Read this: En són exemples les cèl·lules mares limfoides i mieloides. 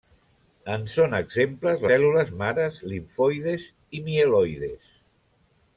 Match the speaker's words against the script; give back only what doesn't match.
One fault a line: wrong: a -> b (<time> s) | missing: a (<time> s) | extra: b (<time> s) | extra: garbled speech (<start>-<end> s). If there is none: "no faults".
missing: les (1.9 s)